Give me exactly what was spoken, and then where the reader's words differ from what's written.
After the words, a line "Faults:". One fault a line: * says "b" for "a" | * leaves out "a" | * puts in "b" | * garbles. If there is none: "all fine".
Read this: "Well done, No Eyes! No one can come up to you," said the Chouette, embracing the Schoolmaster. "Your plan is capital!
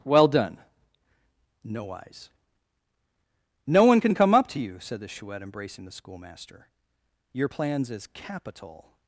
"Well done, No Eyes! No one can come up to you," said the Chouette, embracing the Schoolmaster. "Your plans is capital!
Faults:
* says "plans" for "plan"